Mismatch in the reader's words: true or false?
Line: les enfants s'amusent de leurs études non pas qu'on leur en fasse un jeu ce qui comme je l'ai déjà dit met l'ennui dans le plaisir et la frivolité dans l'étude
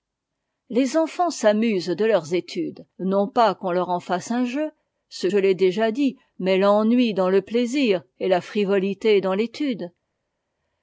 true